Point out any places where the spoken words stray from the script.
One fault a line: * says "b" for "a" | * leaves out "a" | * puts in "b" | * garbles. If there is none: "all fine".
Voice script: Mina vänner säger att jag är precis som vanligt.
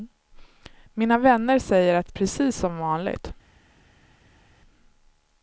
* leaves out "jag är"